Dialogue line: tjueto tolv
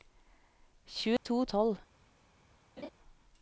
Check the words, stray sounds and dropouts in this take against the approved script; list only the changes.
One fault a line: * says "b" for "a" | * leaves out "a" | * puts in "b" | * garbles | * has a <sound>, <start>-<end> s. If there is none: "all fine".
* has a dropout, 1.2-1.3 s
* has a laugh, 2.8-2.9 s